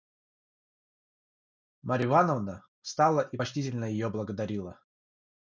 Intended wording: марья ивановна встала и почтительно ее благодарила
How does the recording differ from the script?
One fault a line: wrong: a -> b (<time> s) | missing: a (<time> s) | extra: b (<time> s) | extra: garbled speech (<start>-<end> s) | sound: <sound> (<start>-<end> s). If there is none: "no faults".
no faults